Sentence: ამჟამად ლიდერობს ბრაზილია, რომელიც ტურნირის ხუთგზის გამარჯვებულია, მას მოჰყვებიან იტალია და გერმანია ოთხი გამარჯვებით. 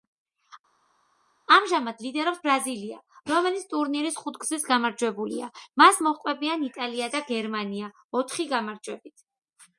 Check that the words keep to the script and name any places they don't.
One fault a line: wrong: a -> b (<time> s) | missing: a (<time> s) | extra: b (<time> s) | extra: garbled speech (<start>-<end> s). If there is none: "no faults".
no faults